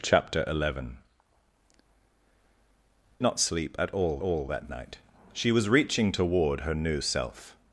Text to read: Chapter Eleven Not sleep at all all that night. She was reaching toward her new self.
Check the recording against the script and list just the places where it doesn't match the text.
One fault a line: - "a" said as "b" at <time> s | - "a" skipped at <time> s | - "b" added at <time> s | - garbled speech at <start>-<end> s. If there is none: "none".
none